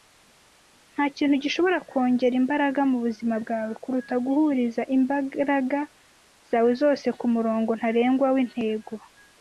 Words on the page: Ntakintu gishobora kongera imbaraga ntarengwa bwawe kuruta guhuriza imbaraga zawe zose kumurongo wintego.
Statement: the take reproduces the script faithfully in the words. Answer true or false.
false